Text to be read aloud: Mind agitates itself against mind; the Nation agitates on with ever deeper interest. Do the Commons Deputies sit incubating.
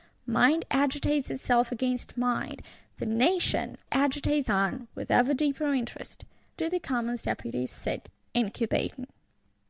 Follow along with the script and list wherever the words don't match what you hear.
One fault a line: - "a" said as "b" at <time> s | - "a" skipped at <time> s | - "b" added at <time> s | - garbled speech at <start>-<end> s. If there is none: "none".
none